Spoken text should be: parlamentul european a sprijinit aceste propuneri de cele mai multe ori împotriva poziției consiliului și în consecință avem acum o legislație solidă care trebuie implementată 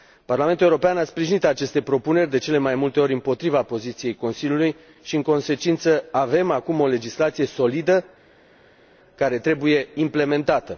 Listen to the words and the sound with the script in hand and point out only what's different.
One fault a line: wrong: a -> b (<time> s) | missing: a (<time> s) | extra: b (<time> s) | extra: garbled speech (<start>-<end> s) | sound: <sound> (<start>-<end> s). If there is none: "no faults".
no faults